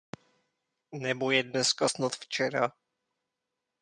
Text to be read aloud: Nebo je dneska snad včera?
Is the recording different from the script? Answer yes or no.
no